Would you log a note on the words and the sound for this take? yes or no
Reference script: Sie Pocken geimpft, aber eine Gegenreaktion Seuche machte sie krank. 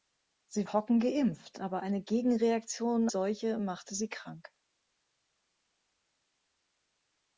no